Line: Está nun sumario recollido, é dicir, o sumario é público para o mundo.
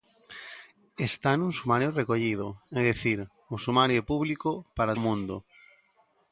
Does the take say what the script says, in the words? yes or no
yes